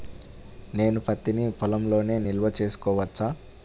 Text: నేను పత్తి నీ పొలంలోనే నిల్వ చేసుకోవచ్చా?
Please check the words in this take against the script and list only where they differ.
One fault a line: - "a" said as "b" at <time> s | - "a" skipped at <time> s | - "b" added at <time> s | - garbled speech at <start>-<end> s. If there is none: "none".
none